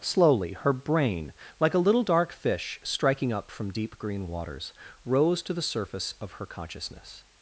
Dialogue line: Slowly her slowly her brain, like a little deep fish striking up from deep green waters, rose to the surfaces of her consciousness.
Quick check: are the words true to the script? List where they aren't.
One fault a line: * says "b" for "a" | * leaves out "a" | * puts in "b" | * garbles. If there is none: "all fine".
* leaves out "slowly her"
* says "dark" for "deep"
* says "surface" for "surfaces"